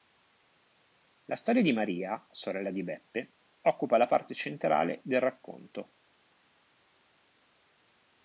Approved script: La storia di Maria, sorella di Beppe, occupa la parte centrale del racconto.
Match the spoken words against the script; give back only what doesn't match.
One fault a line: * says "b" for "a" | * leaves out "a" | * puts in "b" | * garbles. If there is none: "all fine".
all fine